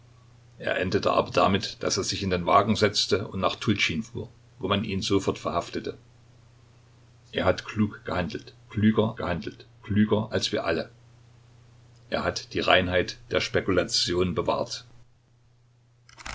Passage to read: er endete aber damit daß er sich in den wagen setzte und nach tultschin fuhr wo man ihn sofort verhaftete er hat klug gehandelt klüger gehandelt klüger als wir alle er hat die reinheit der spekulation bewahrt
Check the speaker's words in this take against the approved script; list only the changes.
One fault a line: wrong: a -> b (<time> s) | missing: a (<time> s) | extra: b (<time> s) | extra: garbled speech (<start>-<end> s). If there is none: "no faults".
no faults